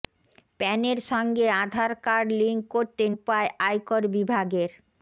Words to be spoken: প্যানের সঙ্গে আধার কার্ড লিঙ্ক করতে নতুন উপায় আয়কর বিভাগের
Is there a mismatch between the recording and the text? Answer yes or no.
yes